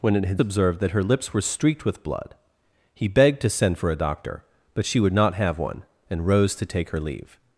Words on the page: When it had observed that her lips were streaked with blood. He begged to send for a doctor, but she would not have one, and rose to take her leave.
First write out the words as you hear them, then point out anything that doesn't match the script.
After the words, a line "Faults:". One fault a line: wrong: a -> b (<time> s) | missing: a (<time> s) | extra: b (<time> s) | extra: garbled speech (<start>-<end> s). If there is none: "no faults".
When it had observed that her lips were streaked with blood. He begged to send for a doctor, but she would not have one, and rose to take her leave.
Faults:
no faults